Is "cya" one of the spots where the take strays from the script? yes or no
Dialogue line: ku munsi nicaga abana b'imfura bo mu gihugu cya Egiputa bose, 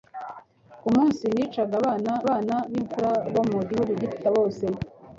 yes